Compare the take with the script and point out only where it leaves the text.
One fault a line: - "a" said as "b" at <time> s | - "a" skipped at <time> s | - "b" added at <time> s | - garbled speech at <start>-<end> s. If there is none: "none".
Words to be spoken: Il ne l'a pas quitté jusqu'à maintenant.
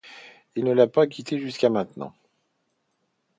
none